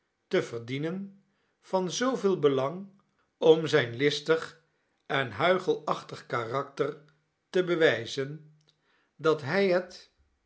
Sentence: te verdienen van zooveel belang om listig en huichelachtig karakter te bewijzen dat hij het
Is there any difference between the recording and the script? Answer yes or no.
yes